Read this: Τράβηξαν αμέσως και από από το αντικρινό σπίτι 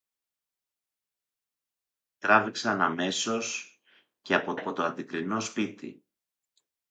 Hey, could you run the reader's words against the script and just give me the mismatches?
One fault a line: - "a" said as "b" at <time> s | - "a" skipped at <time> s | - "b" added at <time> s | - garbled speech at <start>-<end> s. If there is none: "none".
none